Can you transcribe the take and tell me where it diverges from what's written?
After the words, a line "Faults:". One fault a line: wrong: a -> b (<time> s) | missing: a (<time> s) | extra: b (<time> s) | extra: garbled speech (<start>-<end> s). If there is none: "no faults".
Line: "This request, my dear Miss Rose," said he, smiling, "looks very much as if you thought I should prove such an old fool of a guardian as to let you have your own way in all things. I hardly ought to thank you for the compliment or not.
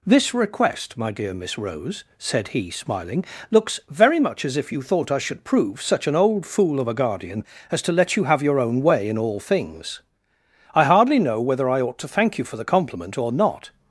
"This request, my dear Miss Rose," said he, smiling, "looks very much as if you thought I should prove such an old fool of a guardian as to let you have your own way in all things. I hardly know whether I ought to thank you for the compliment or not.
Faults:
extra: know whether I (11.2 s)